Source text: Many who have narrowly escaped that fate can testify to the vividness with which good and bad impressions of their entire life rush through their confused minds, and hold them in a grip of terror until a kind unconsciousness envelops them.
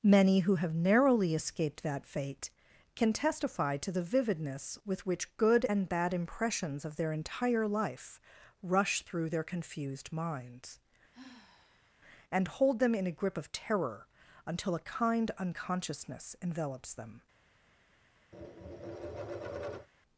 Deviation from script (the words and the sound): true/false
true